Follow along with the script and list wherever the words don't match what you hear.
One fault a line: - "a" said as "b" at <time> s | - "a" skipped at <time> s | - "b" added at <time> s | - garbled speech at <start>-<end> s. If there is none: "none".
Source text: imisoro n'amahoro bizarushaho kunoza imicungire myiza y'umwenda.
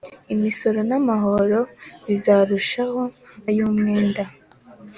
- "kunoza imicungire myiza" skipped at 3.0 s